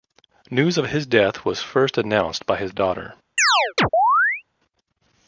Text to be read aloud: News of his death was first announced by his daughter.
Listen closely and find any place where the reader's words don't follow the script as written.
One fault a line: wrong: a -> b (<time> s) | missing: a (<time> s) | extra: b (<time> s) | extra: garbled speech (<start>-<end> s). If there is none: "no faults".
no faults